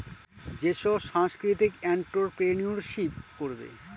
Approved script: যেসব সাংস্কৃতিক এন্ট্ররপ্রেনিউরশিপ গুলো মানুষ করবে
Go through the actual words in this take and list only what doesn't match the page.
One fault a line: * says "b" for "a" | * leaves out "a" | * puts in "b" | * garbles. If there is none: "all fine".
* leaves out "গুলো মানুষ"